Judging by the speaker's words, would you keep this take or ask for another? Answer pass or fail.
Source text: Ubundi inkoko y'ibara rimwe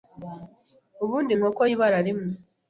pass